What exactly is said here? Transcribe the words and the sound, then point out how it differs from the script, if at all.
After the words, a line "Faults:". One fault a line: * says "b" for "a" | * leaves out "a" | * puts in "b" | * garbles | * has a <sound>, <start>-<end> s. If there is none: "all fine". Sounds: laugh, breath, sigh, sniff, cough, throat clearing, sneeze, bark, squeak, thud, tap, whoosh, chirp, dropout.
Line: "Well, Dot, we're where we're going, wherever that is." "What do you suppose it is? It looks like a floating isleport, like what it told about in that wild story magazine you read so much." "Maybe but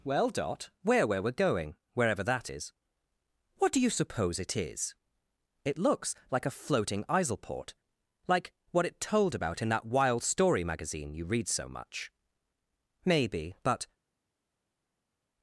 "Well, Dot, we're where we're going, wherever that is." "What do you suppose it is? It looks like a floating isleport, like what it told about in that wild story magazine you read so much." "Maybe but
Faults:
all fine